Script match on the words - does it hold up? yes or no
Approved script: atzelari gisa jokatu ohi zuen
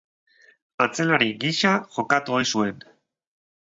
yes